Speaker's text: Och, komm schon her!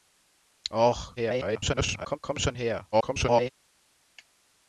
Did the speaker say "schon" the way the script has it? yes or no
yes